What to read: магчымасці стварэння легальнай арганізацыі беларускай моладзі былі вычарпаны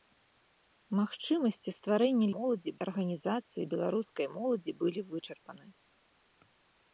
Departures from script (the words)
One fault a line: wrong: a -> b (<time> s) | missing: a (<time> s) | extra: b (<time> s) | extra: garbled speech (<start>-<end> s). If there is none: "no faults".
wrong: легальнай -> моладзі (2.4 s)